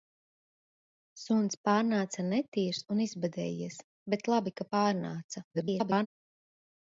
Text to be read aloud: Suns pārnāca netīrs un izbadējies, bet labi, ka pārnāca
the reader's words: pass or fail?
fail